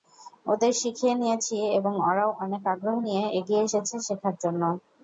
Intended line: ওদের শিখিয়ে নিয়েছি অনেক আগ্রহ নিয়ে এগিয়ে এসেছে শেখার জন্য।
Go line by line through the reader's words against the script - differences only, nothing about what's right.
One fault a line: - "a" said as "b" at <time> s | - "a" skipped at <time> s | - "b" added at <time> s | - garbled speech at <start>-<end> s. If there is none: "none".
- "এবং ওরাও" added at 1.8 s